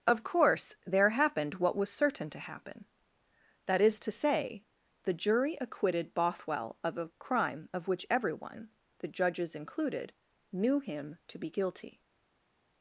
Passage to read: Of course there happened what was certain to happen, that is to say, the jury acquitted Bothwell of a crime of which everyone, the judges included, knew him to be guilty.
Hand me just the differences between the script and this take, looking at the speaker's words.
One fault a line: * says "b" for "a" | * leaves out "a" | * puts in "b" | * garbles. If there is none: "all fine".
all fine